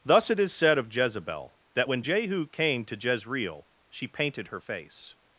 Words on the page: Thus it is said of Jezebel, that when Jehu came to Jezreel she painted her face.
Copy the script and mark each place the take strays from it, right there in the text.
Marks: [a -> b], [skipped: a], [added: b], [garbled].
Thus it is said of Jezebel, that when Jehu came to Jezreel she painted her face.